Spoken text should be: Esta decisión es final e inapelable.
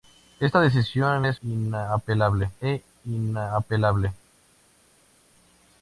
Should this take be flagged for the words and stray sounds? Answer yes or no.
yes